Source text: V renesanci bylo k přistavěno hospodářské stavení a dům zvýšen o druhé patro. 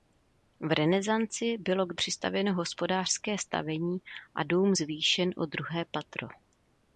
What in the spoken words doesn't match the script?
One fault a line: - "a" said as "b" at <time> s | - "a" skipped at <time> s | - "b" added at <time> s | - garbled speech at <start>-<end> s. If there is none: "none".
none